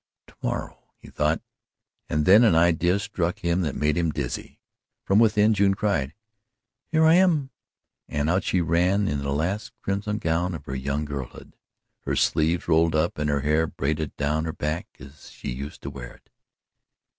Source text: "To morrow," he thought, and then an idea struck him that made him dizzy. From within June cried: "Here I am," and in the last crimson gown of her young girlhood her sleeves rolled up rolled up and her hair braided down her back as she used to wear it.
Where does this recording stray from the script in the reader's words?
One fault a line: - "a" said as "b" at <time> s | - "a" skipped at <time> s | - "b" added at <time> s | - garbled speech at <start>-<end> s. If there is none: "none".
- "out she ran" added at 8.3 s
- "rolled up" skipped at 13.2 s